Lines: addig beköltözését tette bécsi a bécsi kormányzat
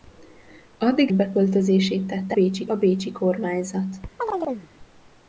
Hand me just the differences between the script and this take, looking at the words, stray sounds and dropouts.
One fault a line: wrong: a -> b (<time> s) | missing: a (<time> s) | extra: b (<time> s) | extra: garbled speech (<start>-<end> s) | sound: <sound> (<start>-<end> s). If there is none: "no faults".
sound: chirp (4.2-4.7 s)